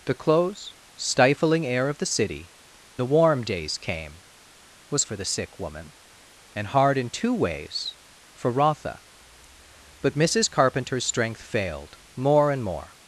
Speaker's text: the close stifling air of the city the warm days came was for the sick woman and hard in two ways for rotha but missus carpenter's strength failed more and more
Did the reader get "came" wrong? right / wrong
right